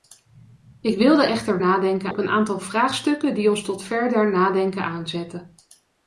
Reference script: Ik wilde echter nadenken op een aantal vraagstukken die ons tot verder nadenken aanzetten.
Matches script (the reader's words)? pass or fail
pass